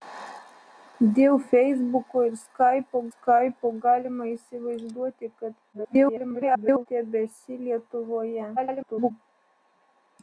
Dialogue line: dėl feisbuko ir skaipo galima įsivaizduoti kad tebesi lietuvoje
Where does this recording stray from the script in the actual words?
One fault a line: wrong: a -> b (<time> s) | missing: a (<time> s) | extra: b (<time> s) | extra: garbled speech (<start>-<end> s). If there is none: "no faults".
extra: skaipo (3.1 s)
extra: garbled speech (5.7-6.9 s)
extra: garbled speech (8.6-9.1 s)